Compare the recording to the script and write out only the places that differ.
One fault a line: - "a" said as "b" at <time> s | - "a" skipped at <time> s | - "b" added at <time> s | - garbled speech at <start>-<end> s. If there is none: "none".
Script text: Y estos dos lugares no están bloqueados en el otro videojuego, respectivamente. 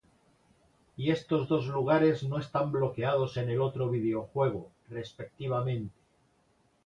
none